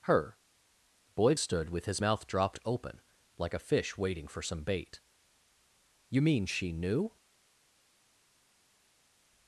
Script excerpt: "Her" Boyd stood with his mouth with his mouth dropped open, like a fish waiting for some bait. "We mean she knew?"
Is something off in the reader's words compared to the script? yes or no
yes